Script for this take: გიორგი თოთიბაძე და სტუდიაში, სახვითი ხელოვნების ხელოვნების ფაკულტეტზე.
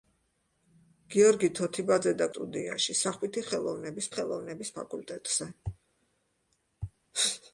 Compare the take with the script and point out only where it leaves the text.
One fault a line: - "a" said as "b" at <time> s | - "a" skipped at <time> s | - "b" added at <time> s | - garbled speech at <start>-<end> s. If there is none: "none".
none